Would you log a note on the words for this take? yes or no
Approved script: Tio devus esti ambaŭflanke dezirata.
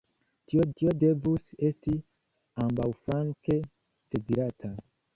yes